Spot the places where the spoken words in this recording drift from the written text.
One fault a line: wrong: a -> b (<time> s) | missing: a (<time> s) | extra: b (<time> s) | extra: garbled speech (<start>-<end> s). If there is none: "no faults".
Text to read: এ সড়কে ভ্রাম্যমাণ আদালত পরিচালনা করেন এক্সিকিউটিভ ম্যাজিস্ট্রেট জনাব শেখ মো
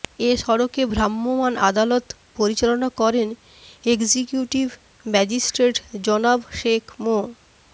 no faults